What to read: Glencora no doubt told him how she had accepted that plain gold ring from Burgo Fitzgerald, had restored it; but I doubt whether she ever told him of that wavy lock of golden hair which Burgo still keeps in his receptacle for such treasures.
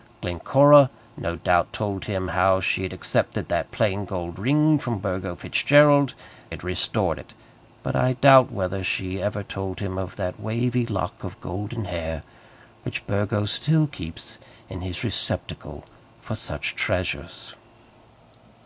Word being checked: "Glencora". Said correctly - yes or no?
yes